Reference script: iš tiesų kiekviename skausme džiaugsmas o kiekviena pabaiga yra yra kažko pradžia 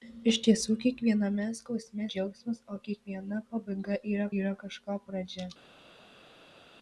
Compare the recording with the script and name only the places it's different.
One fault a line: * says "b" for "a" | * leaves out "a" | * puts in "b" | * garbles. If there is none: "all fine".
all fine